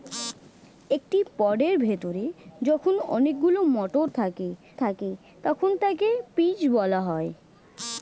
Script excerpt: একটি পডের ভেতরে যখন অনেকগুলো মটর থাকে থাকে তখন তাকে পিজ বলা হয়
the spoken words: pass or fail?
pass